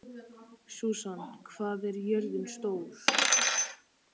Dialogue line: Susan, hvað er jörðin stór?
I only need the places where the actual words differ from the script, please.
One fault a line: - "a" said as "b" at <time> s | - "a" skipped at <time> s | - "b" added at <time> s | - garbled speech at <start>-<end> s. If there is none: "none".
none